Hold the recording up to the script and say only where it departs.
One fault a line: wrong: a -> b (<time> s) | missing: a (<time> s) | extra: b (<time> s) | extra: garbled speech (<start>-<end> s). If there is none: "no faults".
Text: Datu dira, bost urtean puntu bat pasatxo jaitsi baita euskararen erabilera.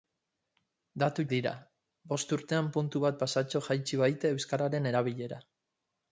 no faults